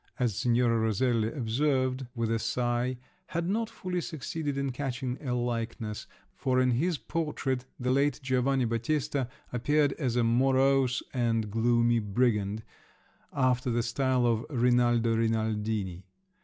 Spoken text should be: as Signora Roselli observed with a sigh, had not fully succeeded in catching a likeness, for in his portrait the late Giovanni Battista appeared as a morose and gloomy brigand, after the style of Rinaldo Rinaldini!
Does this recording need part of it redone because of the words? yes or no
no